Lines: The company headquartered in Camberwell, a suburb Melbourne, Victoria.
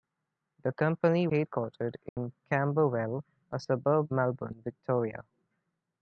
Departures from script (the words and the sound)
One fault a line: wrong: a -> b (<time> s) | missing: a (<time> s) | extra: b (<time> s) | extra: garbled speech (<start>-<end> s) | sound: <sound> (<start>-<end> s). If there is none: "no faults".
sound: dropout (2.1-2.2 s)